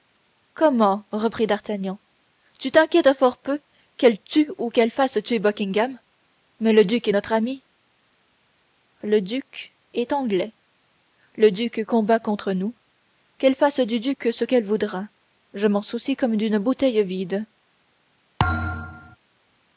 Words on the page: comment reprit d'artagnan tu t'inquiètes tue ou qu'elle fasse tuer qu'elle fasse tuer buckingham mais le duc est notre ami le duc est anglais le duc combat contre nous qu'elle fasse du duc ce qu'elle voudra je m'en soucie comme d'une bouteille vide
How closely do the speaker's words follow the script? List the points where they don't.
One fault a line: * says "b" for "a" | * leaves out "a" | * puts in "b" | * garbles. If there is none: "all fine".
* says "fort peu" for "tue ou"
* says "tue ou" for "fasse tuer"